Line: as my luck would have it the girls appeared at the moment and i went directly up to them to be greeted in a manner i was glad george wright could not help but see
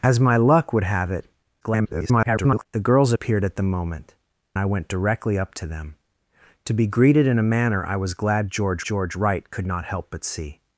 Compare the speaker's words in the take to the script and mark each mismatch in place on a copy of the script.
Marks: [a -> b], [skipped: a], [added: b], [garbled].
as my luck would have it [garbled] the girls appeared at the moment [skipped: and] i went directly up to them to be greeted in a manner i was glad george [added: george] wright could not help but see